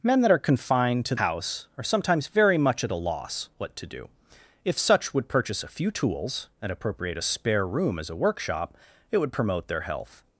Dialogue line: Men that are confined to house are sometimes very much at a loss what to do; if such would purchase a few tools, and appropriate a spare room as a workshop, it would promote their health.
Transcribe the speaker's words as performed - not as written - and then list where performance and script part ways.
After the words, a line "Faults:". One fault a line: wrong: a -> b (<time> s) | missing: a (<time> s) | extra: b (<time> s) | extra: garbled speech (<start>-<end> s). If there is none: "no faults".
Men that are confined to house are sometimes very much at a loss what to do; if such would purchase a few tools, and appropriate a spare room as a workshop, it would promote their health.
Faults:
no faults